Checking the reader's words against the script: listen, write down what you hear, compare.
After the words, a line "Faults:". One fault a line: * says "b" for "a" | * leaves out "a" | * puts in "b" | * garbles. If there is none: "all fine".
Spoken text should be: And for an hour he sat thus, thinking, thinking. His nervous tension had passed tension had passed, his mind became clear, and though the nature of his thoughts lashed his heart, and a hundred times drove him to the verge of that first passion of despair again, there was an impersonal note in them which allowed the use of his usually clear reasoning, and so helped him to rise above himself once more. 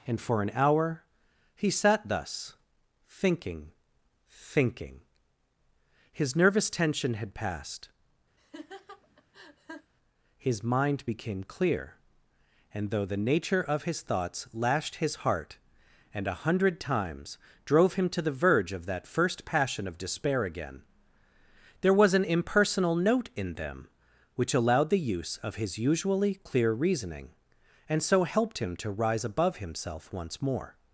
And for an hour he sat thus, thinking, thinking. His nervous tension had passed, his mind became clear, and though the nature of his thoughts lashed his heart, and a hundred times drove him to the verge of that first passion of despair again, there was an impersonal note in them which allowed the use of his usually clear reasoning, and so helped him to rise above himself once more.
Faults:
* leaves out "tension had passed"